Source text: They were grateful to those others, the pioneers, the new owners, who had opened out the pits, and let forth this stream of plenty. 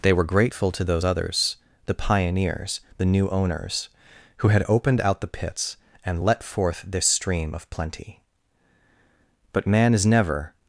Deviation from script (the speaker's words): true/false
true